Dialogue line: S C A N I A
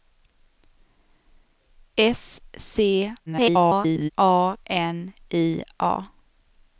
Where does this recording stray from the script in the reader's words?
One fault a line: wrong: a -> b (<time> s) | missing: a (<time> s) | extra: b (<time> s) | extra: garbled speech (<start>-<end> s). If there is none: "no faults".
extra: garbled speech (3.3-4.1 s)